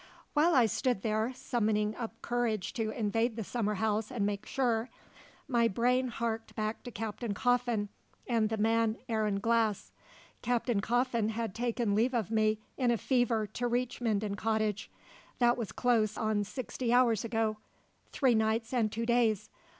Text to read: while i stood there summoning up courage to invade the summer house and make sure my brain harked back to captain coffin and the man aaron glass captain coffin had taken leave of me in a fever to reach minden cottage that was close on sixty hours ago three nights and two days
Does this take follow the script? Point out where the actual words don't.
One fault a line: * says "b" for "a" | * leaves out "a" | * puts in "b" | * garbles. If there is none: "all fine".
all fine